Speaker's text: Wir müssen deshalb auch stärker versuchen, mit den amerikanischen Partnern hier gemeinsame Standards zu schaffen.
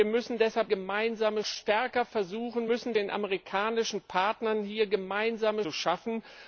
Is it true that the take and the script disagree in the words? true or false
true